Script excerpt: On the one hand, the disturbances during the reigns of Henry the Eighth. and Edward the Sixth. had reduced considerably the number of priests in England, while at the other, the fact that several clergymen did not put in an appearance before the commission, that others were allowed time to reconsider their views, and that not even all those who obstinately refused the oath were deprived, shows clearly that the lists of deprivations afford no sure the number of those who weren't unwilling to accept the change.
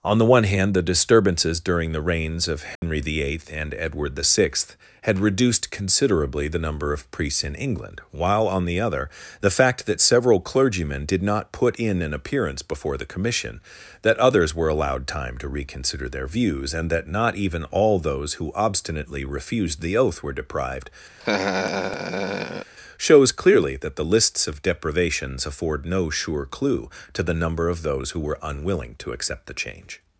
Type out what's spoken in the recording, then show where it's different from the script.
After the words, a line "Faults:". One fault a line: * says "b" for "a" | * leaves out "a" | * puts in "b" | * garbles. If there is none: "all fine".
On the one hand, the disturbances during the reigns of Henry the Eighth. and Edward the Sixth. had reduced considerably the number of priests in England, while on the other, the fact that several clergymen did not put in an appearance before the commission, that others were allowed time to reconsider their views, and that not even all those who obstinately refused the oath were deprived, shows clearly that the lists of deprivations afford no sure clue to the number of those who were unwilling to accept the change.
Faults:
* says "on" for "at"
* puts in "clue to"
* says "were" for "weren't"